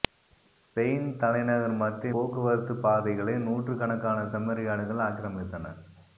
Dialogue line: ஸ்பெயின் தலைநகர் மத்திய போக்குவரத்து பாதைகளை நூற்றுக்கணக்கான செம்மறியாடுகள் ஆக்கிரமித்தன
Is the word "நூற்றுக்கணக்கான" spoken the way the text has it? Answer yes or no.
yes